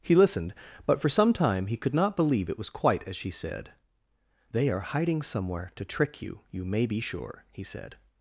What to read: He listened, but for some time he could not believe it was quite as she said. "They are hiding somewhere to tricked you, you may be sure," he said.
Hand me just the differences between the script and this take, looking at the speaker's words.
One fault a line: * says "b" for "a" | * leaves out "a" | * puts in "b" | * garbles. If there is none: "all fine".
* says "trick" for "tricked"